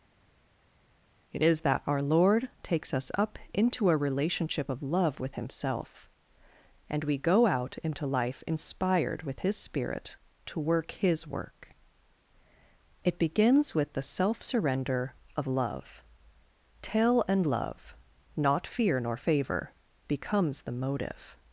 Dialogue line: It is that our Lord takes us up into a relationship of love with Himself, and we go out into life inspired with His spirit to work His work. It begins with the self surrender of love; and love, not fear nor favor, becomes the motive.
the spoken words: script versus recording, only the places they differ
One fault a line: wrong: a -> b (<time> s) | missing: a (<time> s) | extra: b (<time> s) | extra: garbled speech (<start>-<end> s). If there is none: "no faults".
extra: tell (16.8 s)